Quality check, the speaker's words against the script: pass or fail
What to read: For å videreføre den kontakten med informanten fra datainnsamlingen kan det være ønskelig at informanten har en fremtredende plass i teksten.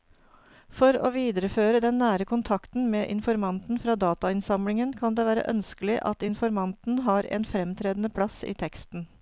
fail